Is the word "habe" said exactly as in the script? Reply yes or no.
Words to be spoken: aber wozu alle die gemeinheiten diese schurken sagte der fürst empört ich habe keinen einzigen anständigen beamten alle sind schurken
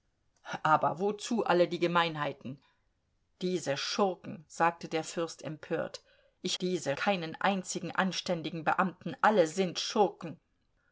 no